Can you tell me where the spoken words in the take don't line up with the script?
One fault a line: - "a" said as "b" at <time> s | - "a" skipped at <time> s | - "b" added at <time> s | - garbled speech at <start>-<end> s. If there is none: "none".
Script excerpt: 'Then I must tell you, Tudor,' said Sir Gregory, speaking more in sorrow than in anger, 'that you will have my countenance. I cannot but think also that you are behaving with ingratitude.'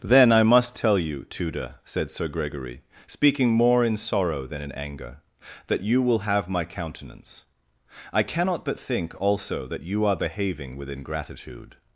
none